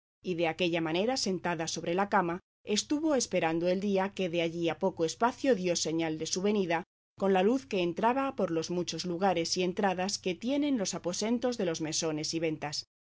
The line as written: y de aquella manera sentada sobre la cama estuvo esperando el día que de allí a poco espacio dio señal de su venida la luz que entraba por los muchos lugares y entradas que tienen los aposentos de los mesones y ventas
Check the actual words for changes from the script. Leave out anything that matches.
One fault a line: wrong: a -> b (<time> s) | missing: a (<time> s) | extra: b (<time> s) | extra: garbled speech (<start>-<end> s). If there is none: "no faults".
extra: con (7.2 s)